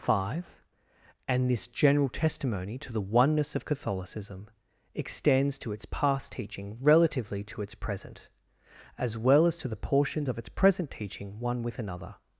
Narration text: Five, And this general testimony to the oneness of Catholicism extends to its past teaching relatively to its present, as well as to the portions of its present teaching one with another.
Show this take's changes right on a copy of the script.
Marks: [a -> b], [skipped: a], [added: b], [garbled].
Five, And this general testimony to the oneness of Catholicism extends to its past teaching relatively to its present, as well as to the portions of its present teaching one with another.